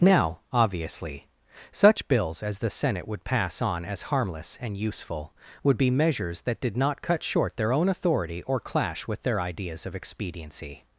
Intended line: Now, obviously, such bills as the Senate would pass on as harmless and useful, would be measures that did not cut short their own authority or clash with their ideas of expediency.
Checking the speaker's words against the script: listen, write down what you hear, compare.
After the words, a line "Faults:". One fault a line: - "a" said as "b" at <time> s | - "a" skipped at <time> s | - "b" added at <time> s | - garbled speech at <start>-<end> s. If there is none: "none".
Now, obviously, such bills as the Senate would pass on as harmless and useful, would be measures that did not cut short their own authority or clash with their ideas of expediency.
Faults:
none